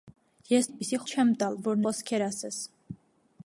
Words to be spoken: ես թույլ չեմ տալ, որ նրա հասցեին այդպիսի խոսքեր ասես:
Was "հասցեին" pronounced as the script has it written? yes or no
no